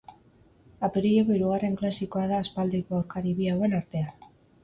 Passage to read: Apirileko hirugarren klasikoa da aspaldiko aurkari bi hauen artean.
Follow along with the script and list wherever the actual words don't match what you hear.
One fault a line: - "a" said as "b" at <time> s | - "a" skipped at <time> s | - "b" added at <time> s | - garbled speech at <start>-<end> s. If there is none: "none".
none